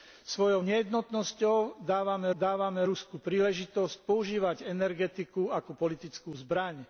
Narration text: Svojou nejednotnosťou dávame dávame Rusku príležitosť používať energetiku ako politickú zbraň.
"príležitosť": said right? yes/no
yes